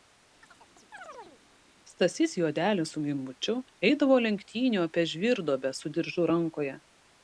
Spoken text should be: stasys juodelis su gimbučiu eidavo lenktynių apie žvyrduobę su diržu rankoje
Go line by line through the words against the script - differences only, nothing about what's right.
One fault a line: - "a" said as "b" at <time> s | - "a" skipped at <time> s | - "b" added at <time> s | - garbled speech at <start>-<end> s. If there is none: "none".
none